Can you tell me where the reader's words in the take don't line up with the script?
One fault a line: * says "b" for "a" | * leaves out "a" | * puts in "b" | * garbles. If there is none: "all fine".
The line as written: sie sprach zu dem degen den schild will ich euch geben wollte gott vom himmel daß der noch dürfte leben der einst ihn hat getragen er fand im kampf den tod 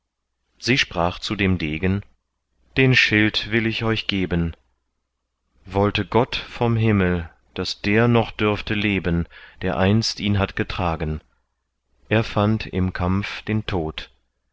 all fine